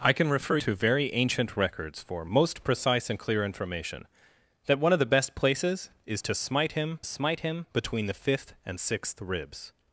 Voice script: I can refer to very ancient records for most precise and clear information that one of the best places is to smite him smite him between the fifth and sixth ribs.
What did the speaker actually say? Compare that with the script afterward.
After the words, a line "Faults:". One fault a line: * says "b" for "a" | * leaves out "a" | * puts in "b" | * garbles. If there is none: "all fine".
I can refer to very ancient records for most precise and clear information that one of the best places is to smite him smite him between the fifth and sixth ribs.
Faults:
all fine